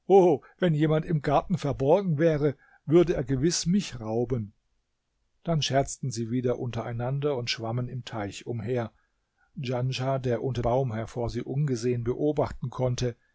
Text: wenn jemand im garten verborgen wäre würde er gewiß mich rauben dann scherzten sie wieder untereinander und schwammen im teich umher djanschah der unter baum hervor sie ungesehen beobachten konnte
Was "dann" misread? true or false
false